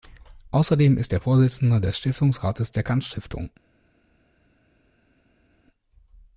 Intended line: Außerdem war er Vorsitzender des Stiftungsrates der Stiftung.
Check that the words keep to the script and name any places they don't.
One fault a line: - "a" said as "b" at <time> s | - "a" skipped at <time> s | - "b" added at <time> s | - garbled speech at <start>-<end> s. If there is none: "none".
- "war" said as "ist" at 1.0 s
- "Kant" added at 2.8 s